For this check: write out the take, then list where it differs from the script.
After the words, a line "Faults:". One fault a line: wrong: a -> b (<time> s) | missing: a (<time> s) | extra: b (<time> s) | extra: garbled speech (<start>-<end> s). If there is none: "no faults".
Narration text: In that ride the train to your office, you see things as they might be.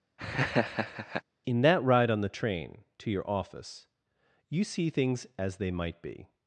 In that ride on the train to your office, you see things as they might be.
Faults:
extra: on (2.1 s)